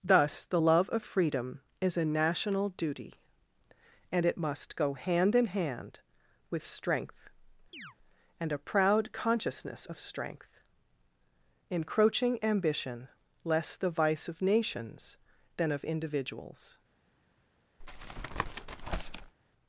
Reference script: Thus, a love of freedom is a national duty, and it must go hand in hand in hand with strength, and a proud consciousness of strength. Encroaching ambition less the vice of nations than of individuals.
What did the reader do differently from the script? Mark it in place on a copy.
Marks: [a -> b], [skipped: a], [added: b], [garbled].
Thus, [a -> the] love of freedom is a national duty, and it must go hand in hand [skipped: in hand] with strength, and a proud consciousness of strength. Encroaching ambition less the vice of nations than of individuals.